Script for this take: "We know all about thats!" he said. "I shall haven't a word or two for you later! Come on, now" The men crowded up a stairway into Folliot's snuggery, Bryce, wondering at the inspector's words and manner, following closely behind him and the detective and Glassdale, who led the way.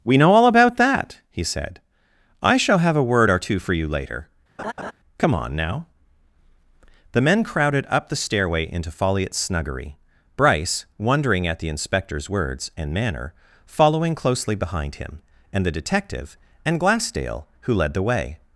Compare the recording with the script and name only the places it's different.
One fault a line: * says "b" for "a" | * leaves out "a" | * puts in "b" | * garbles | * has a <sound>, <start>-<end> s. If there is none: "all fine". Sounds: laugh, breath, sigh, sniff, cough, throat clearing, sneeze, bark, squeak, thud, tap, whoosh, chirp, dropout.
* says "that" for "thats"
* says "have" for "haven't"
* has a laugh, 4.6-4.9 s
* says "the" for "a"